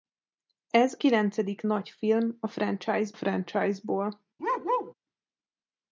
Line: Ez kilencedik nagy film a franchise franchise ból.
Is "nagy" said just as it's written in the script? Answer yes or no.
yes